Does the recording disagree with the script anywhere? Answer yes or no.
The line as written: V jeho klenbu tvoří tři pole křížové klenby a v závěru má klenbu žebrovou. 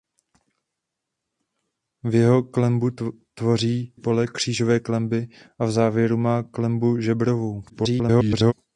yes